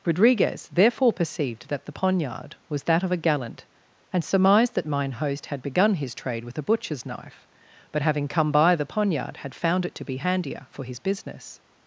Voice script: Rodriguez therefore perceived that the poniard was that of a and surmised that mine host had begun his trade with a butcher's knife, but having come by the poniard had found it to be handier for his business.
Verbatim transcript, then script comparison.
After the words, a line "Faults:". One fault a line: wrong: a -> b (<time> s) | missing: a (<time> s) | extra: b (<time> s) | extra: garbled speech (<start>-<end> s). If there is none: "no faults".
Rodriguez therefore perceived that the poniard was that of a gallant, and surmised that mine host had begun his trade with a butcher's knife, but having come by the poniard had found it to be handier for his business.
Faults:
extra: gallant (3.2 s)